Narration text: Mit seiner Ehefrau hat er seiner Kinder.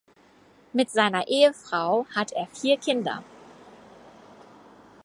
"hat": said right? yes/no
yes